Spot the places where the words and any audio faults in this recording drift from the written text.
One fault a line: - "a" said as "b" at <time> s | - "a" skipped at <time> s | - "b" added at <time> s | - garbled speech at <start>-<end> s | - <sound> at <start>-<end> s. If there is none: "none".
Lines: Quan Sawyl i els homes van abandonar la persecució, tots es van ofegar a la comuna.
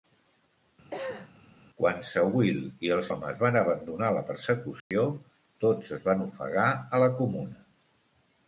- cough at 0.9-1.3 s
- dropout at 4.8-4.9 s